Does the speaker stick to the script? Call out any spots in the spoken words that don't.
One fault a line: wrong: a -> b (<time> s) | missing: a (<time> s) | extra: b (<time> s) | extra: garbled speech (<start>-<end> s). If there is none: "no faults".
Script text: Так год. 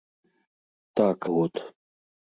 no faults